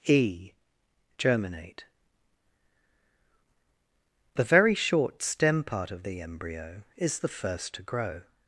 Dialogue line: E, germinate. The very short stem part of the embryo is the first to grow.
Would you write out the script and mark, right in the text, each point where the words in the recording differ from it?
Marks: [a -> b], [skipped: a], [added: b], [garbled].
E, germinate. The very short stem part of the embryo is the first to grow.